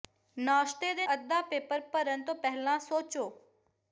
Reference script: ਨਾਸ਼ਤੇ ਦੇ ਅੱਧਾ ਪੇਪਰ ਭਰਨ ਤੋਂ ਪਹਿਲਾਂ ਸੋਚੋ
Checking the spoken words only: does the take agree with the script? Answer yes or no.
yes